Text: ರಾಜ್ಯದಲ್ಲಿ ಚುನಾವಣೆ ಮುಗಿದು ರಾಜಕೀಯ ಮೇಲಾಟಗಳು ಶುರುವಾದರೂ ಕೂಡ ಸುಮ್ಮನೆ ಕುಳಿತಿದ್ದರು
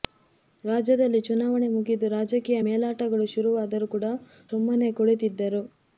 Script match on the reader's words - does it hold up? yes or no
yes